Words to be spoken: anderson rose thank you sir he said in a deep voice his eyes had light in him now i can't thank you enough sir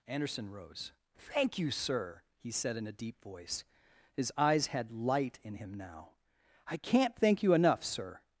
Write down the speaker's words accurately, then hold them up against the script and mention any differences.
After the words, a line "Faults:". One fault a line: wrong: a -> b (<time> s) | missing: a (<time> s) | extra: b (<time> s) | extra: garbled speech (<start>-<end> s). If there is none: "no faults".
anderson rose thank you sir he said in a deep voice his eyes had light in him now i can't thank you enough sir
Faults:
no faults